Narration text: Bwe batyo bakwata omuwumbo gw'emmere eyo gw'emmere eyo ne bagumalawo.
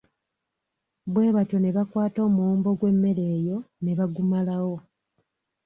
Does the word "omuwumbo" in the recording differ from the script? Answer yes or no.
no